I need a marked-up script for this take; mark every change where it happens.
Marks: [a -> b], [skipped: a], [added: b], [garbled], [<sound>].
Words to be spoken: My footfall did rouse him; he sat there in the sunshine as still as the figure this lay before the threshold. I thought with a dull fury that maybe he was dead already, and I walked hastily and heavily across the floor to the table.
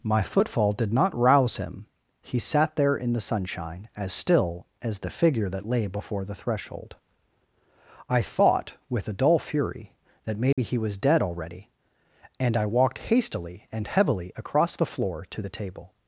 My footfall did [added: not] rouse him; he sat there in the sunshine as still as the figure [this -> that] lay before the threshold. I thought with a dull fury that maybe [dropout] he was dead already, and I walked hastily and heavily across the floor to the table.